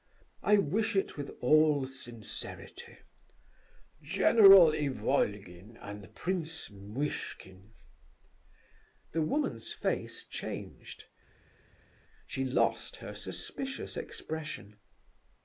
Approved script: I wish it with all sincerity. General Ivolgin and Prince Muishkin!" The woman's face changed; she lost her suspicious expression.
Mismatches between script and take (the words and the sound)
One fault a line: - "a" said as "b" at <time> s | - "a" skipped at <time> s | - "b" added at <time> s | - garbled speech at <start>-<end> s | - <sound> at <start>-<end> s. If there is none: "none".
none